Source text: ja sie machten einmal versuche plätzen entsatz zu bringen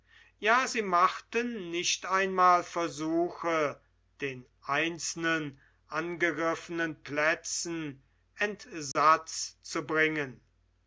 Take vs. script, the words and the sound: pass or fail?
fail